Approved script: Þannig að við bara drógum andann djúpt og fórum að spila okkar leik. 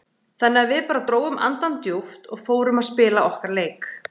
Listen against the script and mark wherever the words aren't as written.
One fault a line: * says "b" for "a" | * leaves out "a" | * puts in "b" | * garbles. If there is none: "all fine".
all fine